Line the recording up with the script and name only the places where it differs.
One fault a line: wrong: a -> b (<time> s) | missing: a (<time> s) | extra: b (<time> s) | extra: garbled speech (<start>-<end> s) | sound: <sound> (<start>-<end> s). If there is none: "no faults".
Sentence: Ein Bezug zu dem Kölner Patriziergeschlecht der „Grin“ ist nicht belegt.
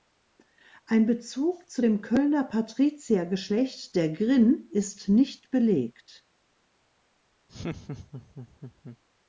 sound: laugh (7.5-9.0 s)